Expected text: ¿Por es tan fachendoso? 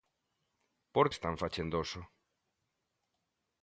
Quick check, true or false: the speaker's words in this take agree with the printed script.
true